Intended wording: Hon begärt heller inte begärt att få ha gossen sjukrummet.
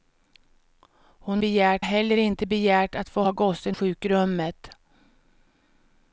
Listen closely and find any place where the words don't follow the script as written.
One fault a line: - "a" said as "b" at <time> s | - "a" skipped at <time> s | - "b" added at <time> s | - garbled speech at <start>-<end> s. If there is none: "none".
none